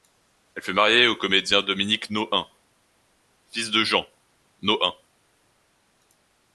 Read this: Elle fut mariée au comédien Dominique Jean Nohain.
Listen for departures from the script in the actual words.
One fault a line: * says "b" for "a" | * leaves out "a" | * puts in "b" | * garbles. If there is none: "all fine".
* puts in "Nohain fils de"